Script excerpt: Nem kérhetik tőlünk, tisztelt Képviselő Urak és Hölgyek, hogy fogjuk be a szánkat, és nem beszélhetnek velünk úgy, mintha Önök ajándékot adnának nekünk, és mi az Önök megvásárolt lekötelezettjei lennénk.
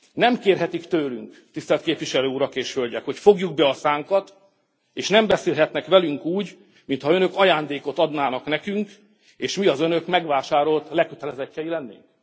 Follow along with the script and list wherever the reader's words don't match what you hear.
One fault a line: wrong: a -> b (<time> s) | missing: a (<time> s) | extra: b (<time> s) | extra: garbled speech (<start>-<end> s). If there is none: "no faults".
no faults